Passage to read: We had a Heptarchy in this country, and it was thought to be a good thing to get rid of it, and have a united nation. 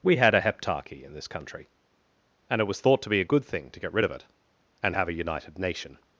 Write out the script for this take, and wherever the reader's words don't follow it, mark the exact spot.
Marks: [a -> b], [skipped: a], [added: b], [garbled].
We had a Heptarchy in this country, and it was thought to be a good thing to get rid of it, and have a united nation.